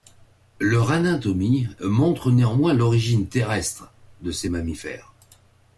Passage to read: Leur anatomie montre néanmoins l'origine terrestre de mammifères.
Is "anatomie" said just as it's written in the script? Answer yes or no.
yes